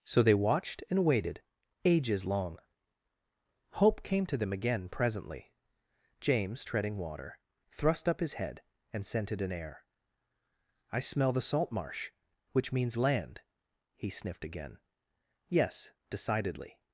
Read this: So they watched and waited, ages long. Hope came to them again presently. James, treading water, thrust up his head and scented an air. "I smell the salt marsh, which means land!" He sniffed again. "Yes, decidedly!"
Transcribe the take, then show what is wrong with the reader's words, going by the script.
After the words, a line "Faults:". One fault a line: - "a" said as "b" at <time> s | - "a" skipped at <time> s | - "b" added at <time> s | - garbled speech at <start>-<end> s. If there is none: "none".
So they watched and waited, ages long. Hope came to them again presently. James, treading water, thrust up his head and scented an air. "I smell the salt marsh, which means land!" He sniffed again. "Yes, decidedly!"
Faults:
none